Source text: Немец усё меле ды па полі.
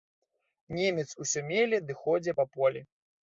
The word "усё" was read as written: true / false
true